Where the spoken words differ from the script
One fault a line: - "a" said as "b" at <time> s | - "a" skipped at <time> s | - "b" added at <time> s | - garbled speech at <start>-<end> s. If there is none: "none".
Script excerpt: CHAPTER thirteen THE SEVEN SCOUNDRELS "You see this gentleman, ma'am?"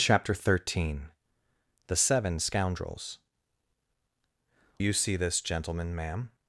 none